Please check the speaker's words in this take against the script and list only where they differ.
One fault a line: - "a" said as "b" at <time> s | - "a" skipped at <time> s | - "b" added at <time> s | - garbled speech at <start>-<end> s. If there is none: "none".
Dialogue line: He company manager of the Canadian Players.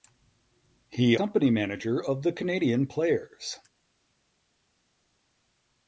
none